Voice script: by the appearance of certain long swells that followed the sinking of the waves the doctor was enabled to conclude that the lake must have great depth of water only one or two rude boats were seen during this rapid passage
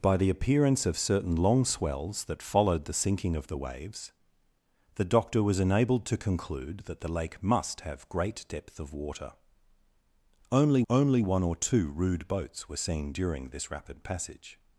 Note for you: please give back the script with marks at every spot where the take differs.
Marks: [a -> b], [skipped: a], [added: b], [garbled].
by the appearance of certain long swells that followed the sinking of the waves the doctor was enabled to conclude that the lake must have great depth of water only [added: only] one or two rude boats were seen during this rapid passage